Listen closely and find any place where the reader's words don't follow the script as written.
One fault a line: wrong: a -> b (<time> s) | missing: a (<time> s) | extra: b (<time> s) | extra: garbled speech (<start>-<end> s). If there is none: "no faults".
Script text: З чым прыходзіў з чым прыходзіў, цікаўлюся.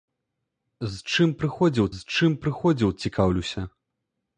no faults